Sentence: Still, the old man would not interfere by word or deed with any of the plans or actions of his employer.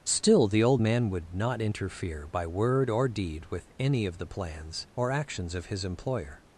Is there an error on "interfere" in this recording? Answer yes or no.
no